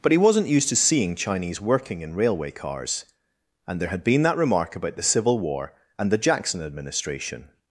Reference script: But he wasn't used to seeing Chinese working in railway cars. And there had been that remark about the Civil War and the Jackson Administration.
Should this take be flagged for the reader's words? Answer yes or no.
no